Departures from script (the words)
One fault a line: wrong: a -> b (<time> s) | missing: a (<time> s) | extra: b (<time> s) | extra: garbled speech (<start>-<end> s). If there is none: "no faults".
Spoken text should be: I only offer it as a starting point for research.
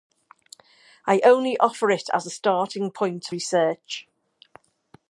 missing: for (3.3 s)